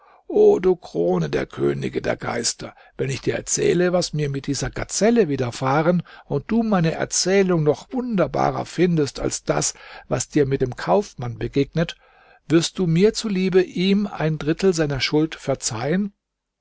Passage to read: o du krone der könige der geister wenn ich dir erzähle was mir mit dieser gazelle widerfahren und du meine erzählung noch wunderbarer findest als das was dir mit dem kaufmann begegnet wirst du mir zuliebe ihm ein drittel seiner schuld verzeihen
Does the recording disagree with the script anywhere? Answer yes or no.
no